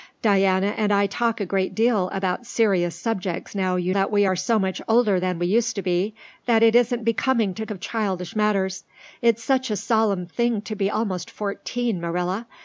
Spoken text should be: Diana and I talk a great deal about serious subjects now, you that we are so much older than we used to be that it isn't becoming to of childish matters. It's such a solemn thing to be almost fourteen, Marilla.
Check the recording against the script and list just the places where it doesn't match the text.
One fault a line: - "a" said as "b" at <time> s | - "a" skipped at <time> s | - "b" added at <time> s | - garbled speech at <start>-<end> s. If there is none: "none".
none